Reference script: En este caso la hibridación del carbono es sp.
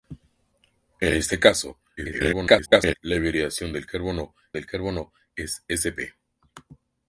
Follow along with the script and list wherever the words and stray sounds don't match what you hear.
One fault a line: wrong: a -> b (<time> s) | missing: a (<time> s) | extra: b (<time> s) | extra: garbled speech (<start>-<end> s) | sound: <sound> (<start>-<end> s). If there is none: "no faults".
extra: garbled speech (2.0-2.9 s)
extra: del carbono (4.5 s)